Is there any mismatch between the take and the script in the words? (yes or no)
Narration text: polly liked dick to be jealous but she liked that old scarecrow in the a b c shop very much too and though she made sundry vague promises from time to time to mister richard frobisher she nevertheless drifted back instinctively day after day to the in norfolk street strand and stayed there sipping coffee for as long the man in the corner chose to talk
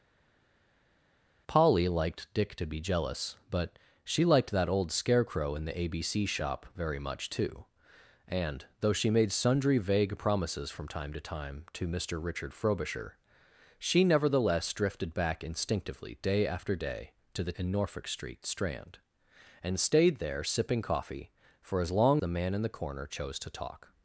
no